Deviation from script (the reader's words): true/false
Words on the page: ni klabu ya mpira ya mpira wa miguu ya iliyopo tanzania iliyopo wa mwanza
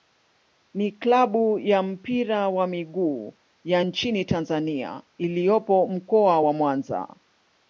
true